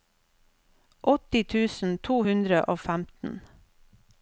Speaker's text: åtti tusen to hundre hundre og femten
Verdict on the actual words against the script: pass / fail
fail